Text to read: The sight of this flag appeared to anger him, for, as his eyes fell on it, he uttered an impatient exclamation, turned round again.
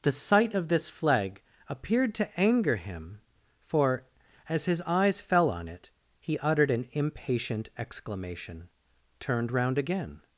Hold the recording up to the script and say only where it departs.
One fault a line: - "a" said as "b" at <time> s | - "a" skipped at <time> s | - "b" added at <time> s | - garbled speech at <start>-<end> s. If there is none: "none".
none